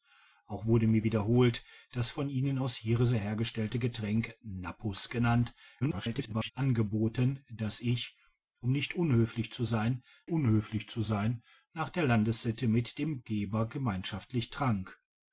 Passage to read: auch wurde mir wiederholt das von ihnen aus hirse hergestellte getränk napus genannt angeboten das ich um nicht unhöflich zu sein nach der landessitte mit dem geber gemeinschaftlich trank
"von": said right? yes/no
yes